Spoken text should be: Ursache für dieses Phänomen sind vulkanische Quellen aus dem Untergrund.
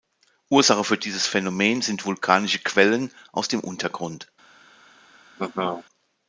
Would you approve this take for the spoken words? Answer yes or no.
yes